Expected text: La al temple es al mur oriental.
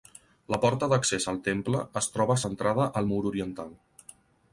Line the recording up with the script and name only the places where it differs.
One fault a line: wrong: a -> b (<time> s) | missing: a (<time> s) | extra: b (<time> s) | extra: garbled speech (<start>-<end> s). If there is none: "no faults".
extra: porta d'accés (0.6 s)
extra: troba centrada (2.1 s)